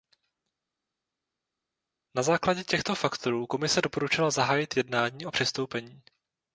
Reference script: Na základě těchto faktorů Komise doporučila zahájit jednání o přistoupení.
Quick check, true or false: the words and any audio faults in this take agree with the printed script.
true